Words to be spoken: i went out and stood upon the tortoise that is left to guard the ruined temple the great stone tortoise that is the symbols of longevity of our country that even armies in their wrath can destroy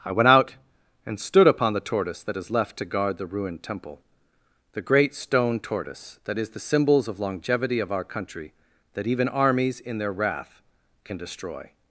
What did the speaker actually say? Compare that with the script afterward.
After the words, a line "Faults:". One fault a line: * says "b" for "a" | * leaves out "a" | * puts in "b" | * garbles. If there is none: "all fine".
i went out and stood upon the tortoise that is left to guard the ruined temple the great stone tortoise that is the symbols of longevity of our country that even armies in their wrath can destroy
Faults:
all fine